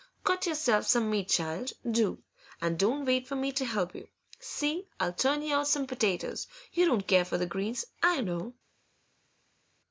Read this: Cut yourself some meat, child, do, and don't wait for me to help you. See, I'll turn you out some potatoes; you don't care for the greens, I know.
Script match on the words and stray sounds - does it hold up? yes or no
yes